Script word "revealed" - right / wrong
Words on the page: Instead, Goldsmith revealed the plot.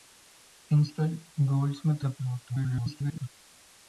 wrong